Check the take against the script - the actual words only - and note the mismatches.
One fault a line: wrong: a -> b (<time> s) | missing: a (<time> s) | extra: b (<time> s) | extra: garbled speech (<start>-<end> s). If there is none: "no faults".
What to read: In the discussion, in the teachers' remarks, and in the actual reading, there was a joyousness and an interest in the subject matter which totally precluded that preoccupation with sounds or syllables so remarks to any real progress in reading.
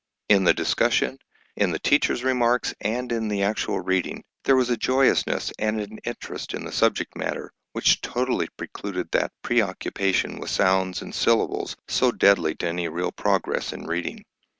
wrong: or -> and (11.0 s)
wrong: remarks -> deadly (12.1 s)